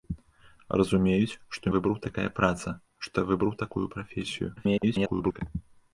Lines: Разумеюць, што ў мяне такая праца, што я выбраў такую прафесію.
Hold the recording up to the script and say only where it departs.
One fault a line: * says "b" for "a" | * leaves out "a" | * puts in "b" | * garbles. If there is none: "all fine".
* says "выбраў" for "мяне"
* garbles